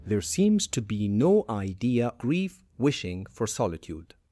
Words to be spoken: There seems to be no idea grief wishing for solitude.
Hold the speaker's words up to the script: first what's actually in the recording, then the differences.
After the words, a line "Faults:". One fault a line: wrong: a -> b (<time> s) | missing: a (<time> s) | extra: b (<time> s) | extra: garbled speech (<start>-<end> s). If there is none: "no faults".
There seems to be no idea grief wishing for solitude.
Faults:
no faults